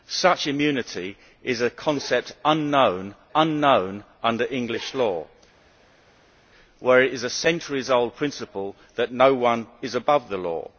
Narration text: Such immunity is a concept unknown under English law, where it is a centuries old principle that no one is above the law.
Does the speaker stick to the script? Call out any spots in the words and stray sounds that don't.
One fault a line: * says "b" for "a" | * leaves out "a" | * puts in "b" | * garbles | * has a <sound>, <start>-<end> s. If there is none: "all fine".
* puts in "unknown"